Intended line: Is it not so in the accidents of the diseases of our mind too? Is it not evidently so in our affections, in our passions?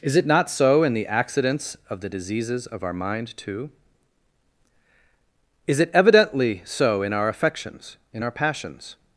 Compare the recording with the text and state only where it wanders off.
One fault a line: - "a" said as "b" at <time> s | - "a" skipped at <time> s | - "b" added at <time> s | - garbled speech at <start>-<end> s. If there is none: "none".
- "not" skipped at 5.9 s